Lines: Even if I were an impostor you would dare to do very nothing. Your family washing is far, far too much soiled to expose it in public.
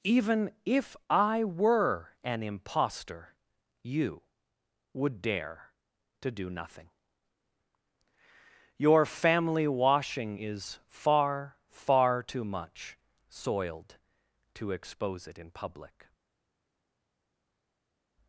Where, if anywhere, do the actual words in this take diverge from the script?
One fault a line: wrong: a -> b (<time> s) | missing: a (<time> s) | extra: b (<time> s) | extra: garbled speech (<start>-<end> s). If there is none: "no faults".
missing: very (6.5 s)